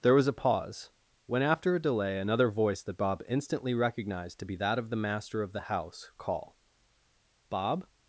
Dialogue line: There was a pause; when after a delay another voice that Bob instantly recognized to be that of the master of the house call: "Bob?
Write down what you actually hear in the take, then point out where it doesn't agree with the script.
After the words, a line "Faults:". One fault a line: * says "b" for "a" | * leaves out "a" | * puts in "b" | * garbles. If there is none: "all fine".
There was a pause; when after a delay another voice that Bob instantly recognized to be that of the master of the house call: "Bob?
Faults:
all fine